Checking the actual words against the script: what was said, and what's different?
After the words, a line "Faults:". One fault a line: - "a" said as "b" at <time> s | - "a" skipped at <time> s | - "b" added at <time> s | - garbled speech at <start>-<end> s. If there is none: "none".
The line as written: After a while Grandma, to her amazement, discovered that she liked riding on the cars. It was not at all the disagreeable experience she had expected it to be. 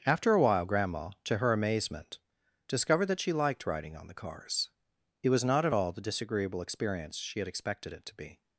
After a while Grandma, to her amazement, discovered that she liked riding on the cars. It was not at all the disagreeable experience she had expected it to be.
Faults:
none